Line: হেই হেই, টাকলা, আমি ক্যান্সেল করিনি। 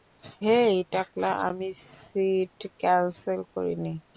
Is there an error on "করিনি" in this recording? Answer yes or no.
no